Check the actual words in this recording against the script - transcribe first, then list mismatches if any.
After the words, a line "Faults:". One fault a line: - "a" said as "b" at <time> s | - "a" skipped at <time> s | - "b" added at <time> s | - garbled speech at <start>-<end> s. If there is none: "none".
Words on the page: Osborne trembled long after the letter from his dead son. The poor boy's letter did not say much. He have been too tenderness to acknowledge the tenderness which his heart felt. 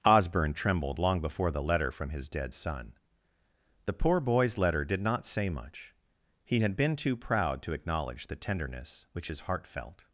Osborne trembled long before the letter from his dead son. The poor boy's letter did not say much. He had been too proud to acknowledge the tenderness which his heart felt.
Faults:
- "after" said as "before" at 1.2 s
- "have" said as "had" at 6.6 s
- "tenderness" said as "proud" at 7.2 s